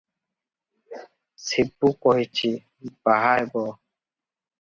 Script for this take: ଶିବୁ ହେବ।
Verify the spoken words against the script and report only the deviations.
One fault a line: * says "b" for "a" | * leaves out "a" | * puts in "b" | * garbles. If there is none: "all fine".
* puts in "କହିଛି ବାହା"